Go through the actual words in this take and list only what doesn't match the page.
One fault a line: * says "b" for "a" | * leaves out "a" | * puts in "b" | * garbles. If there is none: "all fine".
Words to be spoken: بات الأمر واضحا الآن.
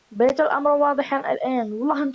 all fine